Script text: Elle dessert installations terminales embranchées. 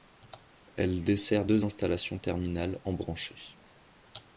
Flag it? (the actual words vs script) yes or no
yes